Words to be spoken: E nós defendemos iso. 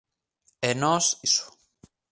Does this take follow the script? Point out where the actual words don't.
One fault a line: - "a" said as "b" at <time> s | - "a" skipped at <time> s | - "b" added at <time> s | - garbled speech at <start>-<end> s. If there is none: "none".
- "defendemos" skipped at 1.1 s